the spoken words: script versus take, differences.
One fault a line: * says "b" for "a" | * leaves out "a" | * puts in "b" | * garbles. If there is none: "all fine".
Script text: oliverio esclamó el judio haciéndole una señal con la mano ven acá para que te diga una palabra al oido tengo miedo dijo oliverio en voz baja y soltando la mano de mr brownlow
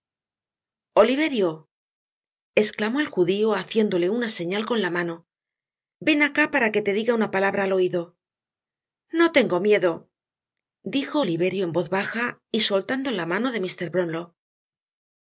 * puts in "no"